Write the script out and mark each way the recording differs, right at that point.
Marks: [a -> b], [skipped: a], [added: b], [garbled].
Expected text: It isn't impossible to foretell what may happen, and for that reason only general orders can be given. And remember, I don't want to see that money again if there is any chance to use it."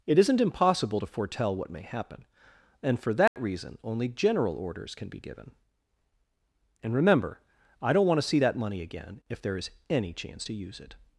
It isn't impossible to foretell what may happen, and for that reason only general orders can be given. And remember, I don't want to see that money again if there is any chance to use it."